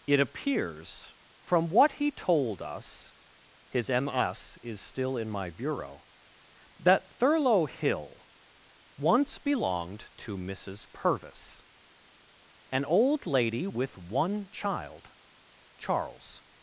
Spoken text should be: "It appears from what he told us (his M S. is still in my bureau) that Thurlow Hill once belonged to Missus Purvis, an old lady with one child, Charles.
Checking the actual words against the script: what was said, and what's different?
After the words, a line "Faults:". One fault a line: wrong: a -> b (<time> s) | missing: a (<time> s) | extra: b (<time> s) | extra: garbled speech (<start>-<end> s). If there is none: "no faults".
"It appears from what he told us (his M S. is still in my bureau) that Thurlow Hill once belonged to Missus Purvis, an old lady with one child, Charles.
Faults:
no faults